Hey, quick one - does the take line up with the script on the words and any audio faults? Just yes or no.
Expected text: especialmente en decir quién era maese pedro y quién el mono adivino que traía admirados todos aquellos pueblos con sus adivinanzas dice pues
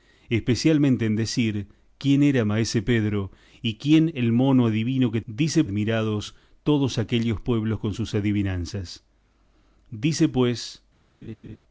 no